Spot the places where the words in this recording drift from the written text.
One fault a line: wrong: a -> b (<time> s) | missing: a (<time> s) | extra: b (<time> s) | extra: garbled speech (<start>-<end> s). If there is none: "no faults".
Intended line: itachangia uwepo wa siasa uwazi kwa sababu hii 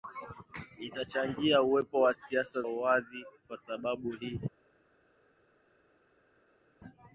no faults